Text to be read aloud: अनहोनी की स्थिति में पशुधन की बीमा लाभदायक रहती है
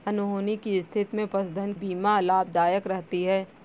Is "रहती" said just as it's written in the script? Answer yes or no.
yes